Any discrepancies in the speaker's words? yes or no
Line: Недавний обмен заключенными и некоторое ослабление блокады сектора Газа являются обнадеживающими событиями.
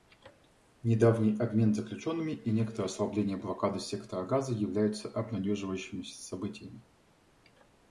no